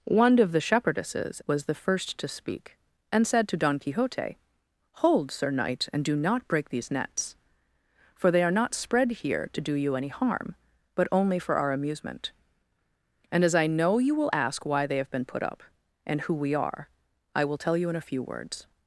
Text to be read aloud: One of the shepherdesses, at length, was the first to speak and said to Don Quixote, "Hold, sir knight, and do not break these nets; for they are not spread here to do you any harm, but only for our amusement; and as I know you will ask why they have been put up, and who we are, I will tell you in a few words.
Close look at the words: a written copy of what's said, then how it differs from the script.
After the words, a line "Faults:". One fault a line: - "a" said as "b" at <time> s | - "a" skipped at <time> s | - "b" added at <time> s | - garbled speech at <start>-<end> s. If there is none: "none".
One of the shepherdesses, was the first to speak and said to Don Quixote, "Hold, sir knight, and do not break these nets; for they are not spread here to do you any harm, but only for our amusement; and as I know you will ask why they have been put up, and who we are, I will tell you in a few words.
Faults:
- "at length" skipped at 1.4 s